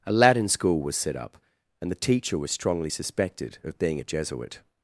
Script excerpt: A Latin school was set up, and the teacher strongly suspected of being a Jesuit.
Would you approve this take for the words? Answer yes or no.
no